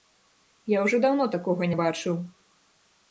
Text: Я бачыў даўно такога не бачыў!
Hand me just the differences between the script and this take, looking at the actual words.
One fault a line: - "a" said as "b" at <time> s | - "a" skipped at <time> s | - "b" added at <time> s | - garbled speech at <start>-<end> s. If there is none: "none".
- "бачыў" said as "ўжо" at 0.8 s